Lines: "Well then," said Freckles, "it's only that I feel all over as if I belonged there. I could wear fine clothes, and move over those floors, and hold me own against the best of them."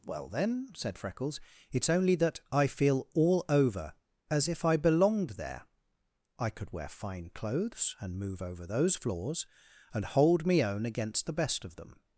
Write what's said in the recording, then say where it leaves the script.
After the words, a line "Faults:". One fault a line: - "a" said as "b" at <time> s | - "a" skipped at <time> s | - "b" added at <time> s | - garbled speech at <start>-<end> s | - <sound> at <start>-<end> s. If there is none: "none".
"Well then," said Freckles, "it's only that I feel all over as if I belonged there. I could wear fine clothes, and move over those floors, and hold me own against the best of them."
Faults:
none